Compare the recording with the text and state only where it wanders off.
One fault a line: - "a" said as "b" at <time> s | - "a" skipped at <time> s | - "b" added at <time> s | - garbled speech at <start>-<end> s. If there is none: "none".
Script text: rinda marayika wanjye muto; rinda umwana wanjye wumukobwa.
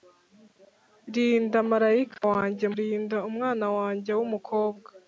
- "muto" skipped at 2.6 s